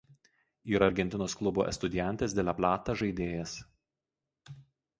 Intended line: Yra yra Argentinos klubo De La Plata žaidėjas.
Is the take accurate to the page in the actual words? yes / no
no